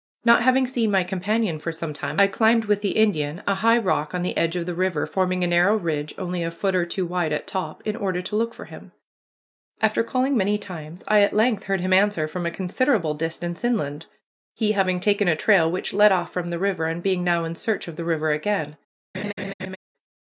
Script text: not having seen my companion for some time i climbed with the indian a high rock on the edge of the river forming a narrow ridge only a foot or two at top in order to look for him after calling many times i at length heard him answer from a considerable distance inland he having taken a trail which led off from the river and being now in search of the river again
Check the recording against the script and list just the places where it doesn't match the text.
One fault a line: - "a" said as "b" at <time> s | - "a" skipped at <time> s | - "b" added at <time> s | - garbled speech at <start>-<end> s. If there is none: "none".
- "wide" added at 7.0 s